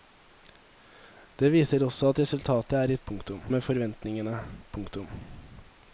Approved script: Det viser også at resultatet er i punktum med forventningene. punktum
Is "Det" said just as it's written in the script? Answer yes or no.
yes